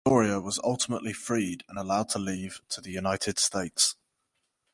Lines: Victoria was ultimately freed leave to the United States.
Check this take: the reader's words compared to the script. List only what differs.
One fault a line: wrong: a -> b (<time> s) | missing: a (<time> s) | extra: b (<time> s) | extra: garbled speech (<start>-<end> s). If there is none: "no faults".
extra: and allowed to (1.7 s)